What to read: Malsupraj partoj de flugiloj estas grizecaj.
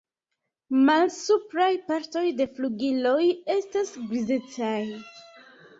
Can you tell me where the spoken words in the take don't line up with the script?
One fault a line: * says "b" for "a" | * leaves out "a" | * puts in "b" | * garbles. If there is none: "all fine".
all fine